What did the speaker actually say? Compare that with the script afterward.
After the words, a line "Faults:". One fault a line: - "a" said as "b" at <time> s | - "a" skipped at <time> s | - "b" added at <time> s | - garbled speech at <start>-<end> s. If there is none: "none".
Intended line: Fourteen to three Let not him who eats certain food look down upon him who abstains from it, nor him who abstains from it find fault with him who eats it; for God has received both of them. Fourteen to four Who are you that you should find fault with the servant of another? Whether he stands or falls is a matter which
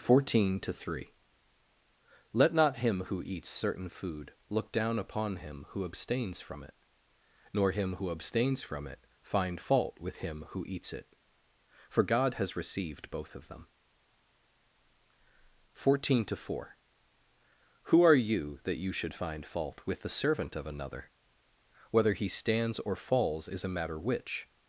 Fourteen to three Let not him who eats certain food look down upon him who abstains from it, nor him who abstains from it find fault with him who eats it; for God has received both of them. Fourteen to four Who are you that you should find fault with the servant of another? Whether he stands or falls is a matter which
Faults:
none